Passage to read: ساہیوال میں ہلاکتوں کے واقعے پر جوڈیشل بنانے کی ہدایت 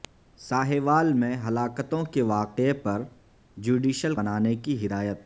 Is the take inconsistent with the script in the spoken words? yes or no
no